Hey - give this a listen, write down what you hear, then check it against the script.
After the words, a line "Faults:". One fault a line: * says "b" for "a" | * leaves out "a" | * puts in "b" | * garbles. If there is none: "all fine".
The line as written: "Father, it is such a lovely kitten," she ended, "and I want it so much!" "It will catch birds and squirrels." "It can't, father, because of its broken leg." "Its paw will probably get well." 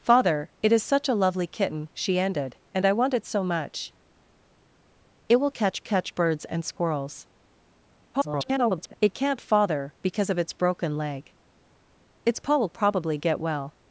"Father, it is such a lovely kitten," she ended, "and I want it so much!" "It will catch catch birds and squirrels." [garbled] "It can't, father, because of its broken leg." "Its paw will probably get well."
Faults:
* puts in "catch"
* garbles